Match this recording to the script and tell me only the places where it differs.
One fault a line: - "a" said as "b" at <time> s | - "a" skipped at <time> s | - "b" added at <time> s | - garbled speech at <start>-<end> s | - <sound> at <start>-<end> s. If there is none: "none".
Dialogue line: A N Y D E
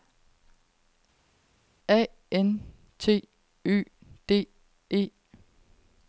- "T" added at 3.0 s